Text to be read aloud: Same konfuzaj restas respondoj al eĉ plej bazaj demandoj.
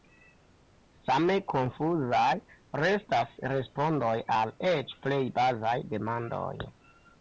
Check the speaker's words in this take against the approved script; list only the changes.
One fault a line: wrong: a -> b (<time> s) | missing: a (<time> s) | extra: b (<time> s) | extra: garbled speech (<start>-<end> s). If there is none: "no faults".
no faults